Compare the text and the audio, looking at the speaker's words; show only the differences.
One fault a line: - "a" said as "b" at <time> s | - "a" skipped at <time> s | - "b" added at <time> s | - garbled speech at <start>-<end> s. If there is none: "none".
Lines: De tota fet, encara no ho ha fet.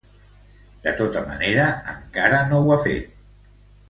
- "fet" said as "manera" at 1.3 s